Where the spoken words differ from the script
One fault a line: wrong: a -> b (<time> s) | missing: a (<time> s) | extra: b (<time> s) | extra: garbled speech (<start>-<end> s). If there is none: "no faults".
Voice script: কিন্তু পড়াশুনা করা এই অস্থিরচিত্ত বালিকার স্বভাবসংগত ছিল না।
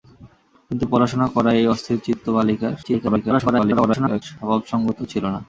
extra: garbled speech (2.8-4.2 s)